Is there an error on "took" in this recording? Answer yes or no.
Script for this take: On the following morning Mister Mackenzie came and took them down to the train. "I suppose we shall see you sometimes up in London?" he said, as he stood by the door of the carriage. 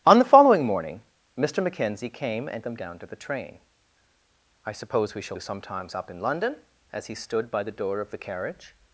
yes